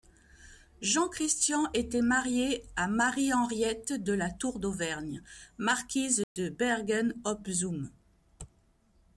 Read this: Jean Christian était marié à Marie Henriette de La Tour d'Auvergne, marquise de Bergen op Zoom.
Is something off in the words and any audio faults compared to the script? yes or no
yes